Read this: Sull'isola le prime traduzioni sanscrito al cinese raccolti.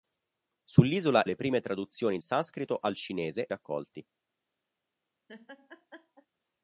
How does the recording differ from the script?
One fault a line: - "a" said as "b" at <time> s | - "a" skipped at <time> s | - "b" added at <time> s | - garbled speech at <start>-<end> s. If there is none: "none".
none